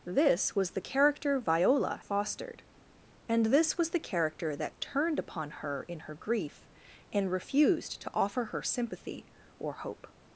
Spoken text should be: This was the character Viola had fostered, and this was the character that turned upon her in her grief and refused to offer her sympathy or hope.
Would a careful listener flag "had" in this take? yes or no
yes